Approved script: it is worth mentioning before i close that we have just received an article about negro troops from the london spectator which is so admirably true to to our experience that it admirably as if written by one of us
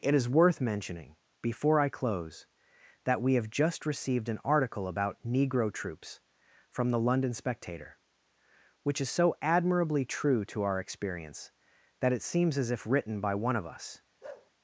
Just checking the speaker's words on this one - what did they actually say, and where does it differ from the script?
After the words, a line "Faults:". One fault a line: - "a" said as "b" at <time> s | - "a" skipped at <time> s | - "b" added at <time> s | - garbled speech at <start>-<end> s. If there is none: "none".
it is worth mentioning before i close that we have just received an article about negro troops from the london spectator which is so admirably true to our experience that it seems as if written by one of us
Faults:
- "to" skipped at 10.6 s
- "admirably" said as "seems" at 12.2 s